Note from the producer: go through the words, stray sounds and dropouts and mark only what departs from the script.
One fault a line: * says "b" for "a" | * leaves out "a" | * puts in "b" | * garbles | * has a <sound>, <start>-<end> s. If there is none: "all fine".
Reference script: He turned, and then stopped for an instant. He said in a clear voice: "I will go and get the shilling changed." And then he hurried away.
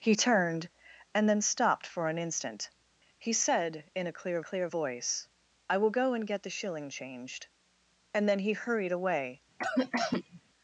* puts in "clear"
* has a cough, 9.6-10.4 s